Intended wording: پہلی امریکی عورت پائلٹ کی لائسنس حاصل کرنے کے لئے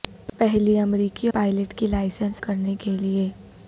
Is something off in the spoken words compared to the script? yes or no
yes